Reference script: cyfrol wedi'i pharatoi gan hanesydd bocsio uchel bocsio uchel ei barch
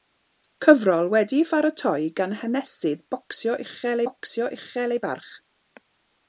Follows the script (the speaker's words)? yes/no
yes